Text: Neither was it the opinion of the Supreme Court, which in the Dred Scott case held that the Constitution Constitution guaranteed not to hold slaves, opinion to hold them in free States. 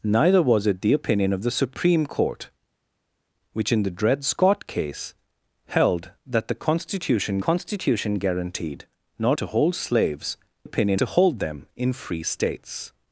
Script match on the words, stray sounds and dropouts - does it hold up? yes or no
yes